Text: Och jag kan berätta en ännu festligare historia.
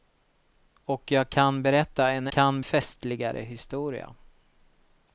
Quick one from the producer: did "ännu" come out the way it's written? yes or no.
no